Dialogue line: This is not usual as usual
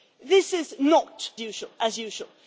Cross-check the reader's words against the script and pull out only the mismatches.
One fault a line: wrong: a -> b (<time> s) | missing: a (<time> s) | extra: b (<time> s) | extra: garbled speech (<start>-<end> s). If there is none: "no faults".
no faults